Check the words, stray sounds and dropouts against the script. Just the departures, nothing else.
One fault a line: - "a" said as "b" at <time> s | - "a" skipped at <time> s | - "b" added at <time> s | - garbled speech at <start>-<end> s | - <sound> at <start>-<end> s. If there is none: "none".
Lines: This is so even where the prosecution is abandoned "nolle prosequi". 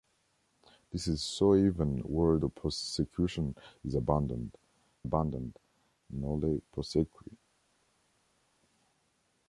- "abandoned" added at 5.0 s